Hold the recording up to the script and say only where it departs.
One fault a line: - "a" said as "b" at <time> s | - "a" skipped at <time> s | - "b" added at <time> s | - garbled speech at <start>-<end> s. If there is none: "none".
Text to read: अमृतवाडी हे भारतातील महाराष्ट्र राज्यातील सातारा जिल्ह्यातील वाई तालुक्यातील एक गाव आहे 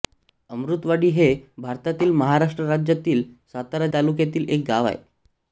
- "जिल्ह्यातील वाई" skipped at 3.9 s